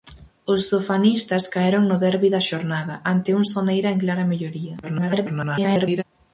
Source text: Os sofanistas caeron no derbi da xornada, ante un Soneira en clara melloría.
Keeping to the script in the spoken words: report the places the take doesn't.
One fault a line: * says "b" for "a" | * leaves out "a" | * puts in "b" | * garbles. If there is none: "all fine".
* garbles